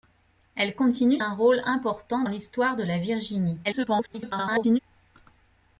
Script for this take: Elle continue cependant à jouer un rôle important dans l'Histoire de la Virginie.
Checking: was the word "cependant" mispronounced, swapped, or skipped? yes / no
yes